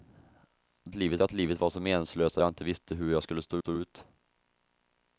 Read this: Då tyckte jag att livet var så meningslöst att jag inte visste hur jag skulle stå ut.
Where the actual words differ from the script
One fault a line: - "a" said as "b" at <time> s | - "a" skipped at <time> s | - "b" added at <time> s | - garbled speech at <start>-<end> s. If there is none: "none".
- "tyckte" said as "livet" at 0.9 s
- "stå" added at 3.6 s